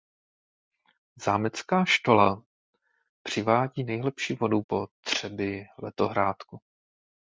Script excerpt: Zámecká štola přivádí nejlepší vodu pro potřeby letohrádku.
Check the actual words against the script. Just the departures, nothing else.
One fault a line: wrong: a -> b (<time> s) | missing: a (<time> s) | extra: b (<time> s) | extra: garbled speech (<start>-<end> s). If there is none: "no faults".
missing: pro (4.6 s)